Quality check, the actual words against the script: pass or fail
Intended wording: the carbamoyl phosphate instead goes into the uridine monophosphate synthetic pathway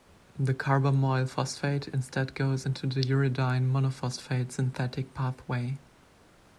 pass